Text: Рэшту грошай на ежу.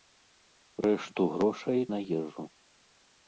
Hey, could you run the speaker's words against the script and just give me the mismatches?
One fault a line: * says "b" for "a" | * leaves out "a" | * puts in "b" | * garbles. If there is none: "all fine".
all fine